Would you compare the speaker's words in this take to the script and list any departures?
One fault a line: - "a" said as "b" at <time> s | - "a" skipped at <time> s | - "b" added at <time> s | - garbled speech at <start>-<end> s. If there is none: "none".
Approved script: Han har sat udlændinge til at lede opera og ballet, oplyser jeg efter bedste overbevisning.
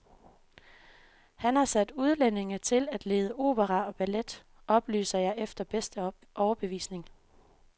none